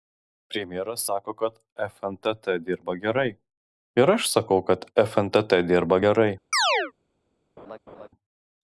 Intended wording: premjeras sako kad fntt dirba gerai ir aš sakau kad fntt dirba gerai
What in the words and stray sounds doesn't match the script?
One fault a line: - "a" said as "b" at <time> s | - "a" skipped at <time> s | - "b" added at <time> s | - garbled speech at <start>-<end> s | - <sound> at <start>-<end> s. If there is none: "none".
- chirp at 6.5-6.9 s
- laugh at 7.6-8.1 s